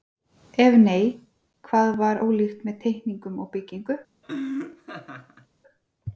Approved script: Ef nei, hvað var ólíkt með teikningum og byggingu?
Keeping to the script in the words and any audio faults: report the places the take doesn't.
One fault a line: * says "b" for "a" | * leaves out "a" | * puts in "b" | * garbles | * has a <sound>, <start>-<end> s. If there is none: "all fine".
* has a laugh, 4.2-5.5 s